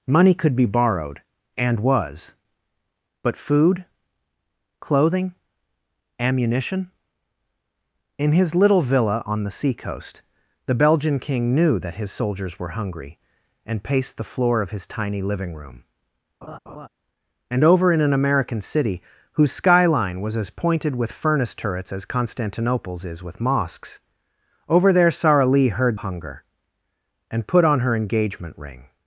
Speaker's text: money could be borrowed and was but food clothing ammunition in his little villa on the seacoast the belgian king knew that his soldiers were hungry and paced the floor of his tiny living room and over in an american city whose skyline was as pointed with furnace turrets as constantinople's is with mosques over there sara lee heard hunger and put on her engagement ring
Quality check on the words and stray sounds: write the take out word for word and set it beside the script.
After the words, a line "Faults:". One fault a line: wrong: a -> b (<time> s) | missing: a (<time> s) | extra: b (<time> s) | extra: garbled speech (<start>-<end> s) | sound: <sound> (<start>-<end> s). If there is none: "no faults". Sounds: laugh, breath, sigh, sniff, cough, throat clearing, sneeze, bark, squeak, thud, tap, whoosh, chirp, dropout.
money could be borrowed and was but food clothing ammunition in his little villa on the seacoast the belgian king knew that his soldiers were hungry and paced the floor of his tiny living room and over in an american city whose skyline was as pointed with furnace turrets as constantinople's is with mosques over there sara lee heard hunger and put on her engagement ring
Faults:
sound: laugh (16.4-16.9 s)